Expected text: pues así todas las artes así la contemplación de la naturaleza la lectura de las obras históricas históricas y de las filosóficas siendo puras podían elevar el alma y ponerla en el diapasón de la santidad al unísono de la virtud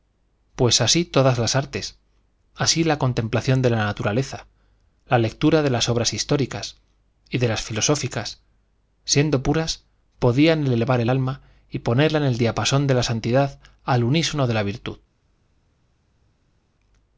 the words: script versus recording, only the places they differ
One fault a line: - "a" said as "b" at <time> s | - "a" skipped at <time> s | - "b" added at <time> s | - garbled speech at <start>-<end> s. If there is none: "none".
- "históricas" skipped at 6.8 s